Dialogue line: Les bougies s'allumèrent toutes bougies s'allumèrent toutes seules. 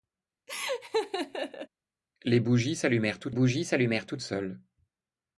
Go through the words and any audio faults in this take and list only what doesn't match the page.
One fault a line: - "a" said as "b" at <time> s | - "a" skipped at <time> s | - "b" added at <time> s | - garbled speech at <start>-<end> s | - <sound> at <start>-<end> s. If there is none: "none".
- laugh at 0.5-1.7 s